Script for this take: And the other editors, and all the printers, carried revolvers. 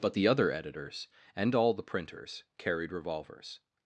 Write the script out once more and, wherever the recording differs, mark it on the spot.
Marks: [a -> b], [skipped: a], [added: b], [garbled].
[And -> But] the other editors, and all the printers, carried revolvers.